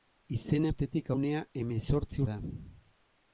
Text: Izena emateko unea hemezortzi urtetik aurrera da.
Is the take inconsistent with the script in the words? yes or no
yes